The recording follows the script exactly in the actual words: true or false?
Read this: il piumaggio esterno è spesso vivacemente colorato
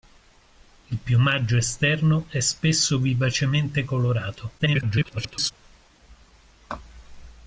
false